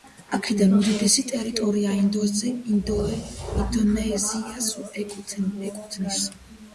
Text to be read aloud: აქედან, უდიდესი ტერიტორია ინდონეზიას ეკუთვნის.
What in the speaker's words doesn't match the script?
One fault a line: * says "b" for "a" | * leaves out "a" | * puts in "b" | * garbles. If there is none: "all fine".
all fine